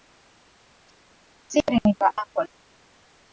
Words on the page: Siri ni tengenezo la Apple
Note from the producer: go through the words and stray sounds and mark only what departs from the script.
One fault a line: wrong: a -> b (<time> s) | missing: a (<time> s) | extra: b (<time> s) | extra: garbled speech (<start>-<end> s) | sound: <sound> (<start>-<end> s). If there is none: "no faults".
missing: tengenezo (1.9 s)